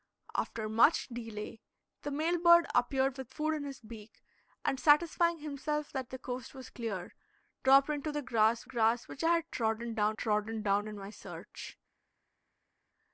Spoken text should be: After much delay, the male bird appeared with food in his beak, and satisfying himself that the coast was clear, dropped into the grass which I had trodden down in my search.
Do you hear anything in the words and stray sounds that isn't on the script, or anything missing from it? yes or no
yes